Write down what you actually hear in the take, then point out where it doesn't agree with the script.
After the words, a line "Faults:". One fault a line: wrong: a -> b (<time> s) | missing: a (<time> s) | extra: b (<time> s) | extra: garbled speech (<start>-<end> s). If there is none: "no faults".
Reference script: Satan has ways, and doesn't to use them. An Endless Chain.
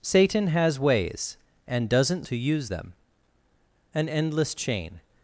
Satan has ways, and doesn't to use them. An Endless Chain.
Faults:
no faults